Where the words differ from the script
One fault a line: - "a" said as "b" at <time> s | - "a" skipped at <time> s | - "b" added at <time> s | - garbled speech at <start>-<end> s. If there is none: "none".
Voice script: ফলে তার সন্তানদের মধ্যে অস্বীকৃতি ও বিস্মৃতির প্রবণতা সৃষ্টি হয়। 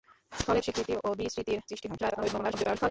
- "তার সন্তানদের মধ্যে" skipped at 0.6 s
- "প্রবণতা" skipped at 1.6 s
- garbled speech at 2.0-2.9 s